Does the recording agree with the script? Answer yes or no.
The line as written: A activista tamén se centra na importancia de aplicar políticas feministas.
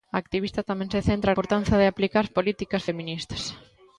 no